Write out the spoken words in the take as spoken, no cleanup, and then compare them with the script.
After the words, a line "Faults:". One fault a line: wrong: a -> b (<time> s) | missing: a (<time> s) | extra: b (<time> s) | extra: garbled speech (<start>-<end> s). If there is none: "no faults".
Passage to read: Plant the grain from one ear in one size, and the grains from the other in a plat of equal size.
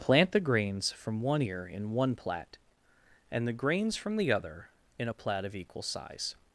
Plant the grains from one ear in one plat, and the grains from the other in a plat of equal size.
Faults:
wrong: grain -> grains (0.4 s)
wrong: size -> plat (2.1 s)